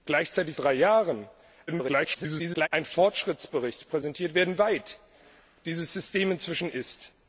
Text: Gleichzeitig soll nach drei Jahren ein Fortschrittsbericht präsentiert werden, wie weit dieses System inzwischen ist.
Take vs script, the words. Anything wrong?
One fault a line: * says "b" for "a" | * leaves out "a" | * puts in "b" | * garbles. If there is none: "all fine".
* leaves out "soll nach"
* garbles
* leaves out "wie"